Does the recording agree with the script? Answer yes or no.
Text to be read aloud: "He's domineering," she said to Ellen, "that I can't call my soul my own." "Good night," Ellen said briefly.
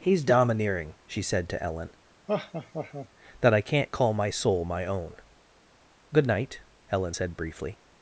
yes